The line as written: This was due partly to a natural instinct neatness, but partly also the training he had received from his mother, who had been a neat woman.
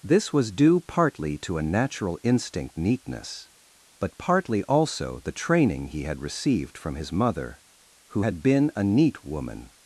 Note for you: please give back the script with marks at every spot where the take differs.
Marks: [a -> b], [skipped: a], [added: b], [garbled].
This was due partly to a natural instinct neatness, but partly also the training he had received from his mother, who had been a neat woman.